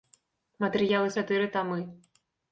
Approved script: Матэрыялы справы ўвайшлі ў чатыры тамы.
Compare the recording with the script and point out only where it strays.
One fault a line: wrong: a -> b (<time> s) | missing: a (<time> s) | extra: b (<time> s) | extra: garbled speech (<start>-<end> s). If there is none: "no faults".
missing: справы ўвайшлі ў (1.1 s)